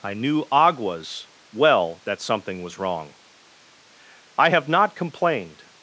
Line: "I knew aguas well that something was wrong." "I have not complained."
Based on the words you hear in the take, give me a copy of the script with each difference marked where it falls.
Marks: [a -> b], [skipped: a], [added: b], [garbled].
"I knew aguas well that something was wrong." "I have not complained."